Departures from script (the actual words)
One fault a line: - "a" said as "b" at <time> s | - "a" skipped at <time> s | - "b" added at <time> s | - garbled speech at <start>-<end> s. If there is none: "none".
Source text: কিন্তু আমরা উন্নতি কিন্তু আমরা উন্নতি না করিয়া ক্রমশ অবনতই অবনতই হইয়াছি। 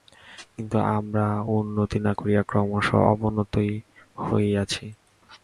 - "কিন্তু আমরা উন্নতি" skipped at 2.0 s
- "অবনতই" skipped at 3.7 s